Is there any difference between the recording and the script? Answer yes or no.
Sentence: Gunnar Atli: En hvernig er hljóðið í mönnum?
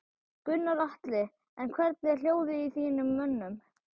yes